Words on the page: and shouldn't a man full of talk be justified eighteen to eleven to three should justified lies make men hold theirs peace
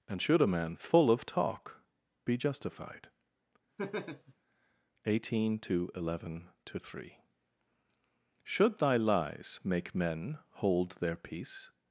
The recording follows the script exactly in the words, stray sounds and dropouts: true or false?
false